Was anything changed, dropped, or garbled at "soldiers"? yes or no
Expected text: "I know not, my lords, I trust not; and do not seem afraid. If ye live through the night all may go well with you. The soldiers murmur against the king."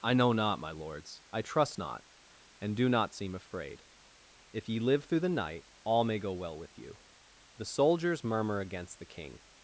no